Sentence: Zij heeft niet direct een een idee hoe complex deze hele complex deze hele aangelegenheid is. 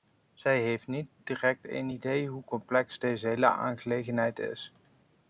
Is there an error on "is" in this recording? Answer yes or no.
no